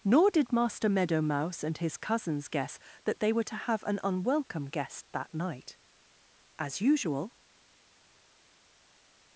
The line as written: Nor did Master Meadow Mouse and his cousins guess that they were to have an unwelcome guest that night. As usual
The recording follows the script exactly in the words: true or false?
true